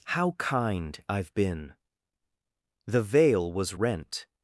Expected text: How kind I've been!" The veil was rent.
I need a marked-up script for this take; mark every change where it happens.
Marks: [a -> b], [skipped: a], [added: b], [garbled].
How kind I've been!" The veil was rent.